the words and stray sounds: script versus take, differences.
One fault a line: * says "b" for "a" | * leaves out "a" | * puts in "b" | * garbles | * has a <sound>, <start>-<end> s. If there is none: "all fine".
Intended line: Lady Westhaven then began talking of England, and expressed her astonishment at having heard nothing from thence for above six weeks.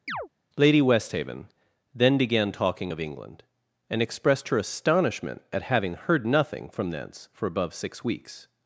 * has a chirp, 0.1-0.3 s